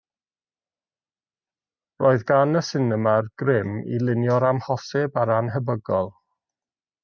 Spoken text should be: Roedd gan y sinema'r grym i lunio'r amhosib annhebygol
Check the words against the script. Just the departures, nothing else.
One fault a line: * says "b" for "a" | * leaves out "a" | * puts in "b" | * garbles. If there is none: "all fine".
* puts in "a'r"